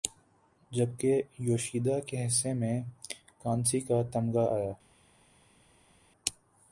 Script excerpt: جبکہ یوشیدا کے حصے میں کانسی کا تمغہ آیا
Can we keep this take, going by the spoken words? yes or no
yes